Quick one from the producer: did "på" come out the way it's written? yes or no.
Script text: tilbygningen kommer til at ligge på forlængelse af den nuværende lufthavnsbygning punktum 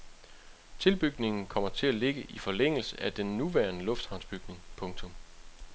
no